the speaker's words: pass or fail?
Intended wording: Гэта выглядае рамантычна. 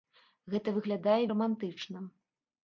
pass